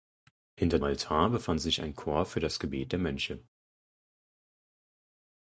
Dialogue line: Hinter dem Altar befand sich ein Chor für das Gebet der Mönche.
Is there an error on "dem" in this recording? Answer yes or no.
yes